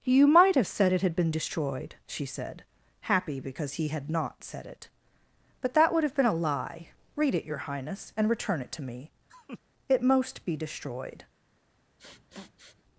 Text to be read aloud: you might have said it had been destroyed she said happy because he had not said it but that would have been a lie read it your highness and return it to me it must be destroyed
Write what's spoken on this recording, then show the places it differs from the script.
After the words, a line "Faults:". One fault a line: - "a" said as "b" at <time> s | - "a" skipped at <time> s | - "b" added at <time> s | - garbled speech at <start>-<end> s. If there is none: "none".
you might have said it had been destroyed she said happy because he had not said it but that would have been a lie read it your highness and return it to me it most be destroyed
Faults:
- "must" said as "most" at 10.0 s